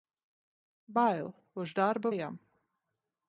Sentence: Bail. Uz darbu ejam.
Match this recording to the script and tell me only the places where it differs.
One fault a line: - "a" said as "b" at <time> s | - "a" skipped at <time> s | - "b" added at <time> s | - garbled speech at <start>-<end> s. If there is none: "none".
none